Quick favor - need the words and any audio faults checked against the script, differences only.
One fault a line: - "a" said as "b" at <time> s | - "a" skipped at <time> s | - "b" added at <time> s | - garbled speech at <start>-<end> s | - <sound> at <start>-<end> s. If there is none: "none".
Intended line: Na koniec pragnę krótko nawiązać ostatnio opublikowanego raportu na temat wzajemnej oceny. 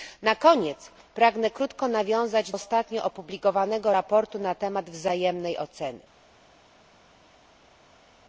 none